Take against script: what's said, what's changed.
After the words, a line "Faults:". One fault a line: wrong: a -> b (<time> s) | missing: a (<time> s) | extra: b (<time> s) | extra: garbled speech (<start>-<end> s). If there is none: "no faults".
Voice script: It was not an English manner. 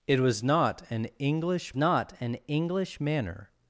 It was not an English not an English manner.
Faults:
extra: not an English (1.7 s)